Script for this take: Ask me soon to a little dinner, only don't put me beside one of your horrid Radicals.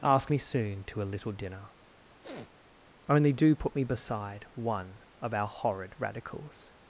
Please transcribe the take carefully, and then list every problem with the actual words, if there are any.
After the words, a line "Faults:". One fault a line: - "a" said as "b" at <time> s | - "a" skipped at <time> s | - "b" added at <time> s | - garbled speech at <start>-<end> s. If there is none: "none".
Ask me soon to a little dinner, only do put me beside one of our horrid Radicals.
Faults:
- "don't" said as "do" at 3.3 s
- "your" said as "our" at 5.3 s